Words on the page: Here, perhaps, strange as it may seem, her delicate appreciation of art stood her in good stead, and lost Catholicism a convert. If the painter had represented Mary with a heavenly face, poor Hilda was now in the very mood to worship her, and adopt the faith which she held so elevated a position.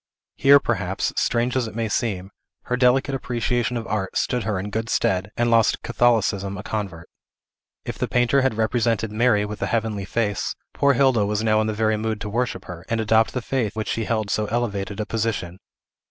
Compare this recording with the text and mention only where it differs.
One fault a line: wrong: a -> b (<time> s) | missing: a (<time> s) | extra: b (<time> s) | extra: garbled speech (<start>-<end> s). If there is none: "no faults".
no faults